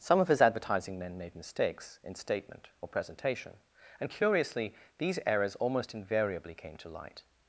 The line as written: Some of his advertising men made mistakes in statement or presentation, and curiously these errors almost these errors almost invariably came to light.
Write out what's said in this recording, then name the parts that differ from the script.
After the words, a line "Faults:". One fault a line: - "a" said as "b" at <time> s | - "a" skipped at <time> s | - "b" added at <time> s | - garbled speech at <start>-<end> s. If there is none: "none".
Some of his advertising men made mistakes in statement or presentation, and curiously these errors almost invariably came to light.
Faults:
- "these errors almost" skipped at 5.9 s